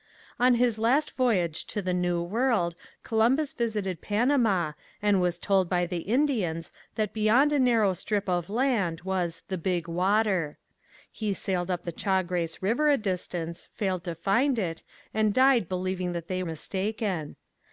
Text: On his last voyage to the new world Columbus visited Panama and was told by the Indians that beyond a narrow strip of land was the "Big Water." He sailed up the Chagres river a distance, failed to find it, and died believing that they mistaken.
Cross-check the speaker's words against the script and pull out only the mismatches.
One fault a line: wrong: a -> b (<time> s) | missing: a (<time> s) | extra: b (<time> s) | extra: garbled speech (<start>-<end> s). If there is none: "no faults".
no faults